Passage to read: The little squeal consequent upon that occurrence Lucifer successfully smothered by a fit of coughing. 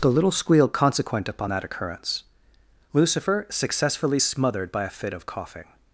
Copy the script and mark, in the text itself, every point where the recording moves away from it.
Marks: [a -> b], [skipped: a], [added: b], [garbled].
The little squeal consequent upon that occurrence Lucifer successfully smothered by a fit of coughing.